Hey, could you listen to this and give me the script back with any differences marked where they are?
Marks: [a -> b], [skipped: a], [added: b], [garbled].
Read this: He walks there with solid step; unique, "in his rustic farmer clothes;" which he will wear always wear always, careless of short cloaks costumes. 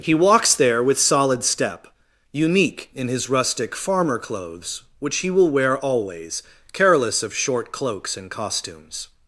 He walks there with solid step; unique, "in his rustic farmer clothes;" which he will wear always [skipped: wear always,] careless of short cloaks [added: and] costumes.